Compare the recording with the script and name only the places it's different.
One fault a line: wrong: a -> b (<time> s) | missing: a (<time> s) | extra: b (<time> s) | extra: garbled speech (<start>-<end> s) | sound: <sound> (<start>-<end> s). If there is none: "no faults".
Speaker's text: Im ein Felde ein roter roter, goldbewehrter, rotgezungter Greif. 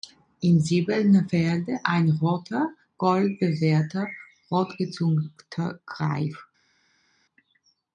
wrong: ein -> silbernen (0.6 s)
missing: roter (2.7 s)